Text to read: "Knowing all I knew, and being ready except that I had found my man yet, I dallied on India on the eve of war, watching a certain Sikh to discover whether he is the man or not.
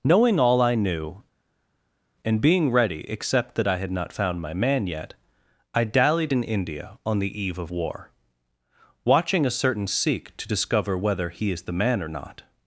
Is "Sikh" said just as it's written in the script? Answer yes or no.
yes